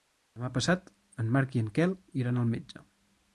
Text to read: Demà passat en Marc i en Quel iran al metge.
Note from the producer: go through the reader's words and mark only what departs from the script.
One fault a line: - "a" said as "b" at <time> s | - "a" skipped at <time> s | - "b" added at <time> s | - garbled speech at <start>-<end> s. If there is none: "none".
none